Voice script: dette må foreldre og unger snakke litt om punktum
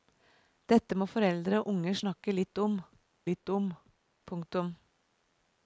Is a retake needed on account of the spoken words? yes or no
yes